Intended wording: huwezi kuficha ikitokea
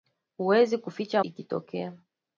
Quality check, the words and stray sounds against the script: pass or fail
pass